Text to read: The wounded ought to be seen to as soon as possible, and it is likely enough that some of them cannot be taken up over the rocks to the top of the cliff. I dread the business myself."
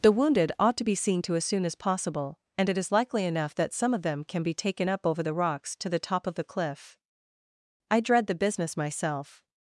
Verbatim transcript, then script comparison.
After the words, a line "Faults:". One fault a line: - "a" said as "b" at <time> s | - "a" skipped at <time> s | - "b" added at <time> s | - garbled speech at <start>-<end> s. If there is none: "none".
The wounded ought to be seen to as soon as possible, and it is likely enough that some of them can be taken up over the rocks to the top of the cliff. I dread the business myself."
Faults:
- "cannot" said as "can" at 4.2 s